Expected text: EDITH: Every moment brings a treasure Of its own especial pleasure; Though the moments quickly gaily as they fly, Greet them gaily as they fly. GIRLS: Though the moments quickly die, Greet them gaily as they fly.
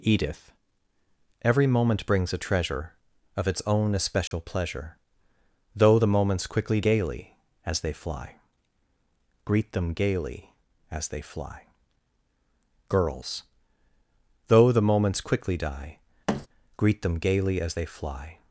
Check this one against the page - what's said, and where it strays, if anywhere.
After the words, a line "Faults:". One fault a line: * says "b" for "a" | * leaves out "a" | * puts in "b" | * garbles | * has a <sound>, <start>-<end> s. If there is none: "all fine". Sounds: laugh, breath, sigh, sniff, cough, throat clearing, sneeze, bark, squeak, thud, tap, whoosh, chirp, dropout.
EDITH: Every moment brings a treasure Of its own especial pleasure; Though the moments quickly gaily as they fly, Greet them gaily as they fly. GIRLS: Though the moments quickly die, Greet them gaily as they fly.
Faults:
* has a dropout, 4.3-4.3 s
* has a thud, 16.3-16.5 s